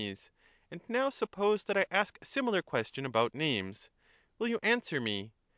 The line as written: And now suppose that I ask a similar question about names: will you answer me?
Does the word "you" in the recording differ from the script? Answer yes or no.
no